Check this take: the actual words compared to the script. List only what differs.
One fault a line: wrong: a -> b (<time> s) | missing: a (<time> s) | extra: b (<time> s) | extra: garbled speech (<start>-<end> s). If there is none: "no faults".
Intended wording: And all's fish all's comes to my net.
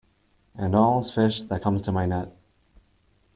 wrong: all's -> that (1.5 s)